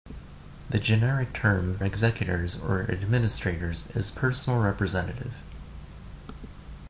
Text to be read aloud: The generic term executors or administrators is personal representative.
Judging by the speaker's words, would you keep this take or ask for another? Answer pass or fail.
pass